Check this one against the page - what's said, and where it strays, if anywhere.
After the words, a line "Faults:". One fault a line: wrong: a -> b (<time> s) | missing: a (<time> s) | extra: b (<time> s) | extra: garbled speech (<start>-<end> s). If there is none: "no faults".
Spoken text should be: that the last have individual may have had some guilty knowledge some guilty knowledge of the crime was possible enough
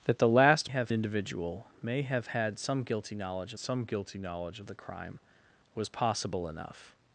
that the last have individual may have had some guilty knowledge some guilty knowledge of the crime was possible enough
Faults:
no faults